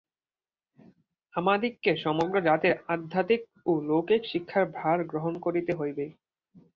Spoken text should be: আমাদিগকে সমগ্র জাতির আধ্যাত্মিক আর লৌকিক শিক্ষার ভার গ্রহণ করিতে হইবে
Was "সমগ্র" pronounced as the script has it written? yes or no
yes